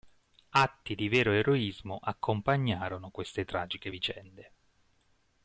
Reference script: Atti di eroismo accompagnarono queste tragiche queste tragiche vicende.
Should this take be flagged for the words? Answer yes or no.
yes